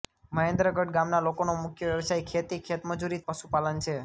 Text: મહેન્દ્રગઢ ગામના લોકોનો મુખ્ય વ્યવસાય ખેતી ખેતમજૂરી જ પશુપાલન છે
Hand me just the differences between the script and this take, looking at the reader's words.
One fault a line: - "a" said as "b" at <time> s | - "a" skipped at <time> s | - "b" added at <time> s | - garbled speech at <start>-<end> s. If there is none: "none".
none